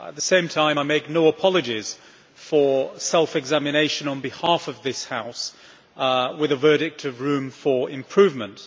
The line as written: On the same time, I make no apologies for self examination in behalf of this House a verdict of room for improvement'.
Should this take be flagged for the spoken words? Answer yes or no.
yes